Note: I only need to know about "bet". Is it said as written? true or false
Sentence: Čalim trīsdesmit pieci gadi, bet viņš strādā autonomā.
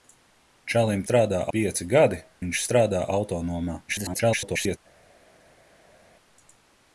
false